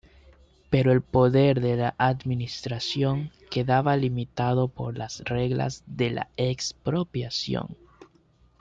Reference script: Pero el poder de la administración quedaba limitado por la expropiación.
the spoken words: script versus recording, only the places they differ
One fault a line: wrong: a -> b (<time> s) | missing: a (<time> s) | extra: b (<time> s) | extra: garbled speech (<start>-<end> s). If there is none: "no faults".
extra: las reglas de (5.0 s)